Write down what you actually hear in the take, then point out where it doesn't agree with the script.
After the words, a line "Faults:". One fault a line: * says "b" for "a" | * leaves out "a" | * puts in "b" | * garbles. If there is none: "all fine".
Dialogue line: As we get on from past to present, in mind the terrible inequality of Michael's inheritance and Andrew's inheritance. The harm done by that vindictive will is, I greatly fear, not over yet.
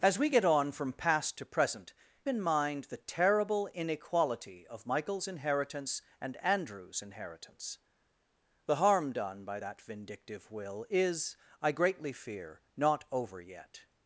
As we get on from past to present, in mind the terrible inequality of Michael's inheritance and Andrew's inheritance. The harm done by that vindictive will is, I greatly fear, not over yet.
Faults:
all fine